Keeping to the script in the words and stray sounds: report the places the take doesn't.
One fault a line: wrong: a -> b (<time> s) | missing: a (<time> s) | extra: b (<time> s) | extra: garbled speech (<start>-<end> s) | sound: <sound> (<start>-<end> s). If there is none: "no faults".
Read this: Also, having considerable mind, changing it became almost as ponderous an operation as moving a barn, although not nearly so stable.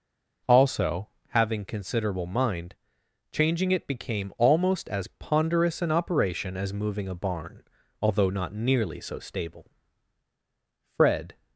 extra: Fred (10.8 s)